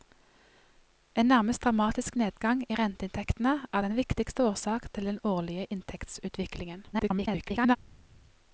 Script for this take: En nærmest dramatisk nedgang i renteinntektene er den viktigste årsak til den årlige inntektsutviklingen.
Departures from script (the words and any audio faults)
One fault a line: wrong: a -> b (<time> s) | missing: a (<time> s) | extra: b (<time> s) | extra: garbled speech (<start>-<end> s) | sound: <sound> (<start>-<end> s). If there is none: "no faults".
extra: garbled speech (6.9-7.8 s)